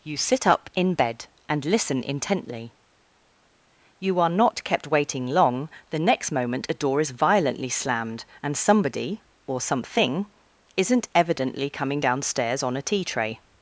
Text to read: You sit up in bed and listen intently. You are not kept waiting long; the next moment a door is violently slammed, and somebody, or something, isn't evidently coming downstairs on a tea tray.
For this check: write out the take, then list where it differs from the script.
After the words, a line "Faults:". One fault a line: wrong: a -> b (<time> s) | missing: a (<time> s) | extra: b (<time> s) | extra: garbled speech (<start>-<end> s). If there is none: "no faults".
You sit up in bed and listen intently. You are not kept waiting long; the next moment a door is violently slammed, and somebody, or something, isn't evidently coming downstairs on a tea tray.
Faults:
no faults